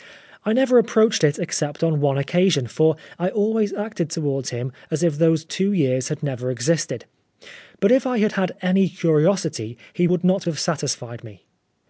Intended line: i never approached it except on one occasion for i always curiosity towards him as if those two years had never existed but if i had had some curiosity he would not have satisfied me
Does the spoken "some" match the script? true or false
false